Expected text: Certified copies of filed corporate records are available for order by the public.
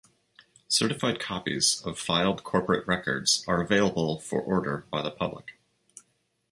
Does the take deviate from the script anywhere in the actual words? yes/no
no